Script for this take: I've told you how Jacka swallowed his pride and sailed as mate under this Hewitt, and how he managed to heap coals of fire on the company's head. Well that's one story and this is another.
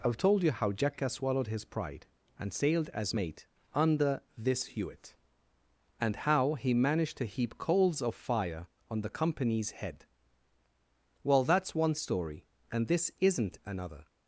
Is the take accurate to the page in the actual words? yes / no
no